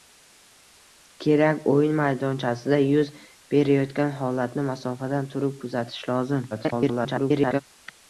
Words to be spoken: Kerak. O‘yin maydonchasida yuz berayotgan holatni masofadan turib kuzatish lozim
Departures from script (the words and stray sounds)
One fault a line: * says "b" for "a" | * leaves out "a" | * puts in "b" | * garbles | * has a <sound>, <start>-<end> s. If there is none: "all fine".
* garbles